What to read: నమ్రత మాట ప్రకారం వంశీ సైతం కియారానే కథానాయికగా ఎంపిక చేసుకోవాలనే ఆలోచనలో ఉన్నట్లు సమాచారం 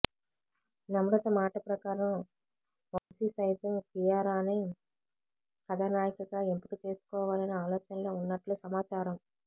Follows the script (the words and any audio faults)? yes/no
no